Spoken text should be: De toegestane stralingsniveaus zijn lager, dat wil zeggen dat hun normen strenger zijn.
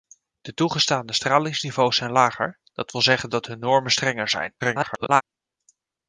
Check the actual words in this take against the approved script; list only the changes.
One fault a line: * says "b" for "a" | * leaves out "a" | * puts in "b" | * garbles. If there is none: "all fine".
* garbles